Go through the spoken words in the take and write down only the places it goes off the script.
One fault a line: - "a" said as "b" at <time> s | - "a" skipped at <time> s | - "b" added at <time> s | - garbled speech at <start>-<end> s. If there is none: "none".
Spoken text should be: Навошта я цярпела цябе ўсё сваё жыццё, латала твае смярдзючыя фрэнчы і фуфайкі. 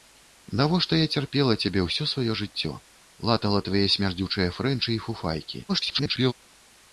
- garbled speech at 5.7-6.3 s